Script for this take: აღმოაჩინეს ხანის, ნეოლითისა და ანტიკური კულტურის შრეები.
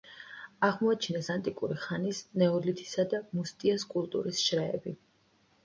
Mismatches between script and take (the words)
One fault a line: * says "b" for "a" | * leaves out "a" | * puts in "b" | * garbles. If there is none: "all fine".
* puts in "ანტიკური"
* says "მუსტიეს" for "ანტიკური"